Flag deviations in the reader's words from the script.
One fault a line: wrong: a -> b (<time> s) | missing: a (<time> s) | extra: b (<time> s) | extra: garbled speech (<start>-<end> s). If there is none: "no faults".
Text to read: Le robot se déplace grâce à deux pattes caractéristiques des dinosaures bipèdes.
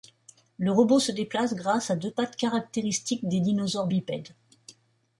no faults